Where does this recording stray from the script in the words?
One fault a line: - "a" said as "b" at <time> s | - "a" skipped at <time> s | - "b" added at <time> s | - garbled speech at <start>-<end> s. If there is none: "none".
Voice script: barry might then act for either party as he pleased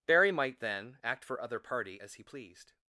- "either" said as "other" at 1.4 s